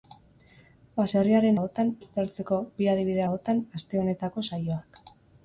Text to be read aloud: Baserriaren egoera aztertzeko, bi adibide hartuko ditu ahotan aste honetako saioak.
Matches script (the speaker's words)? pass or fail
fail